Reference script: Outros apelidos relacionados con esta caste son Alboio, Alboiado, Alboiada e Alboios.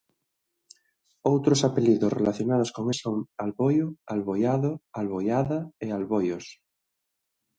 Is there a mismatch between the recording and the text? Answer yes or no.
yes